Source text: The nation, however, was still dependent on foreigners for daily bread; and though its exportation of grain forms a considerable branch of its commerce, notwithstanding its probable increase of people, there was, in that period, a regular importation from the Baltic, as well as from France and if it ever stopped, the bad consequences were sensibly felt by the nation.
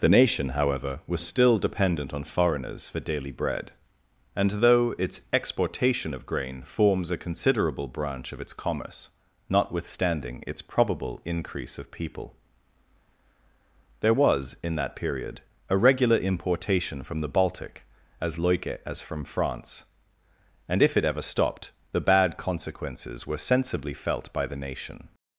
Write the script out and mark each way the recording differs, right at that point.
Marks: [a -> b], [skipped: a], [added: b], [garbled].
The nation, however, was still dependent on foreigners for daily bread; and though its exportation of grain forms a considerable branch of its commerce, notwithstanding its probable increase of people, there was, in that period, a regular importation from the Baltic, as [well -> loike] as from France and if it ever stopped, the bad consequences were sensibly felt by the nation.